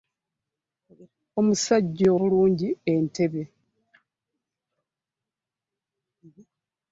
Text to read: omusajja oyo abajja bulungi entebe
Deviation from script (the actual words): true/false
true